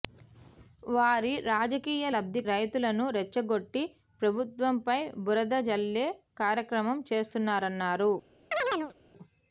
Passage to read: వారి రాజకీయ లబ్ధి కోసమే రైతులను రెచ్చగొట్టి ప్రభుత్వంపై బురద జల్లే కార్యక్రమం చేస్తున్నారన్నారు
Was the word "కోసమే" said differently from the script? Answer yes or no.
yes